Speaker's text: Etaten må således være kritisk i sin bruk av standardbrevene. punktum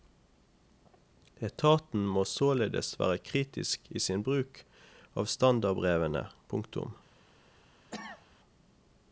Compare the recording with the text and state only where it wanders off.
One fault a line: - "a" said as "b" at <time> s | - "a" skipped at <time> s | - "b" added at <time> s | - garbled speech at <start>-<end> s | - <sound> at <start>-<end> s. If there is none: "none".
- cough at 7.9-8.3 s